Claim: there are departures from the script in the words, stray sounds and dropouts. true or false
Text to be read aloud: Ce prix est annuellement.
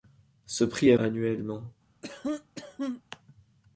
true